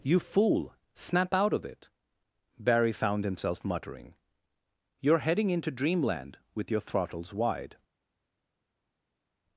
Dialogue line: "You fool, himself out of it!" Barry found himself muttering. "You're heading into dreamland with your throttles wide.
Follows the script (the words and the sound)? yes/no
no